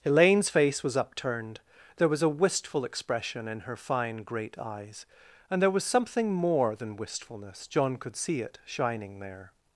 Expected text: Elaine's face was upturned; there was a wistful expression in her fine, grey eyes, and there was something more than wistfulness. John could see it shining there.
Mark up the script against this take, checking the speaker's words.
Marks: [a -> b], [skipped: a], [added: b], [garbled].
Elaine's face was upturned; there was a wistful expression in her fine, [grey -> great] eyes, and there was something more than wistfulness. John could see it shining there.